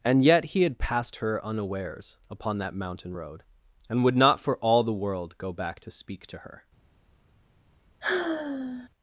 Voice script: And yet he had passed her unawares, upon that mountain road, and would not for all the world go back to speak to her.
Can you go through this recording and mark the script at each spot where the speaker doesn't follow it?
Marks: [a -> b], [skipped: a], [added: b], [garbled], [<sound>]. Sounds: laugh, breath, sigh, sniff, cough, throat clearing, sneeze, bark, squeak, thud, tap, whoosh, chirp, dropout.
And yet he had passed her unawares, upon that mountain road, and would not for all the world go back to speak to her. [sigh]